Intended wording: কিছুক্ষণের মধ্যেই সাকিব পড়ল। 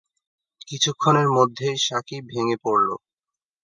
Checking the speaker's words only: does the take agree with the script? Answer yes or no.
no